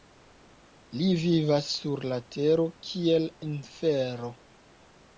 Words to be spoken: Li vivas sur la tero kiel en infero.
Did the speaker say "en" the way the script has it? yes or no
no